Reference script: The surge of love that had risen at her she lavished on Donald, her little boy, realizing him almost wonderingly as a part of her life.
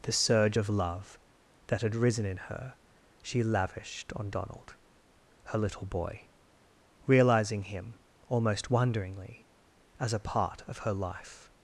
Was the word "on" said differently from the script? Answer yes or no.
no